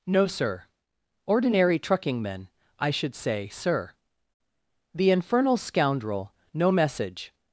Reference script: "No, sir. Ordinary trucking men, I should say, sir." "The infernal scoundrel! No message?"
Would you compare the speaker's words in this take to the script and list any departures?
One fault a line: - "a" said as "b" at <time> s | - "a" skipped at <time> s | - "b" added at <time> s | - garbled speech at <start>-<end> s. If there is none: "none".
none